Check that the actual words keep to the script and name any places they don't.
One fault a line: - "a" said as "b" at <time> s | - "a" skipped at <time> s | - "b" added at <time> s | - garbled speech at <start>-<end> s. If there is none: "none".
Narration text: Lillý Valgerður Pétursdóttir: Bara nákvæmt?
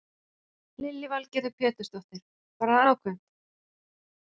none